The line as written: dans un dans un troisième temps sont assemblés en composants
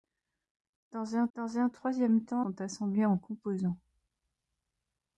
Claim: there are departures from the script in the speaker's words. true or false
false